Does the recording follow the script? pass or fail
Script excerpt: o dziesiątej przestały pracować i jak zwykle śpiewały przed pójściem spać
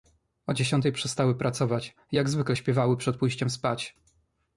pass